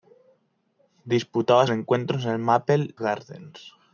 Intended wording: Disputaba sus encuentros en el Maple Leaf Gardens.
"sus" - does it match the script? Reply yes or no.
no